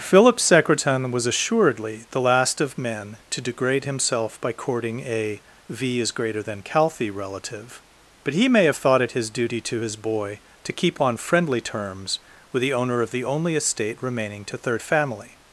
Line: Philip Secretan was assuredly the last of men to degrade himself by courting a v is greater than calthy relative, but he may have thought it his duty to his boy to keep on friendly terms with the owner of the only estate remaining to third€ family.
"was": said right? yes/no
yes